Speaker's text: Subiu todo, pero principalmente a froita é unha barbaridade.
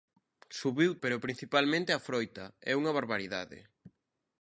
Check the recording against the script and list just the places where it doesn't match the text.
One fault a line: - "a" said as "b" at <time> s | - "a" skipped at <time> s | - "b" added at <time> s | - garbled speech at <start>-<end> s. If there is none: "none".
- "todo" skipped at 0.9 s